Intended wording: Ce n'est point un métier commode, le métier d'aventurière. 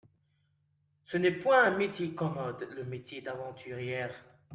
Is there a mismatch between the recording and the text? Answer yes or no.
no